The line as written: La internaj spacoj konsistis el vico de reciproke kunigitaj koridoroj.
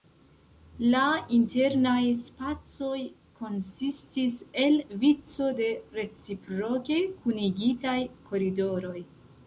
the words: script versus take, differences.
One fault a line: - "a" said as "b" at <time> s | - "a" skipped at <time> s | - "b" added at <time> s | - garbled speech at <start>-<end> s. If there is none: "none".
none